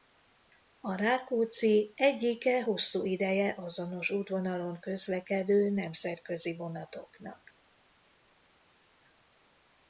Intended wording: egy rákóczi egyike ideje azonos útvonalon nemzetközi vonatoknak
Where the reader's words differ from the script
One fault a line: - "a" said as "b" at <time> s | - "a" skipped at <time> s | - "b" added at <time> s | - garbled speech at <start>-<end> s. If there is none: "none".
- "egy" said as "a" at 0.8 s
- "hosszú" added at 2.6 s
- "közlekedő" added at 4.8 s